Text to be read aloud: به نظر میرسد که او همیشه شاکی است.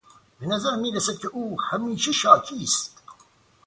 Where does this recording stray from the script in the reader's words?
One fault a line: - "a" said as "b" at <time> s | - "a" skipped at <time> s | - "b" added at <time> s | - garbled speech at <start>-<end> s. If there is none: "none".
none